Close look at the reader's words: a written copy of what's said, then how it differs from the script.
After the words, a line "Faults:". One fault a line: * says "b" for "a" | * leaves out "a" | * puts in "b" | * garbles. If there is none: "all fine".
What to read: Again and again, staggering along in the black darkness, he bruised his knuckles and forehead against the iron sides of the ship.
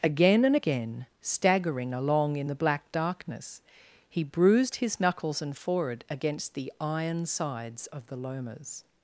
Again and again, staggering along in the black darkness, he bruised his knuckles and forehead against the iron sides of the lomas.
Faults:
* says "lomas" for "ship"